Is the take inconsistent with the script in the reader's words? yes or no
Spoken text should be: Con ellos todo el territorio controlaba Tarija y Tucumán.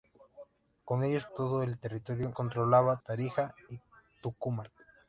no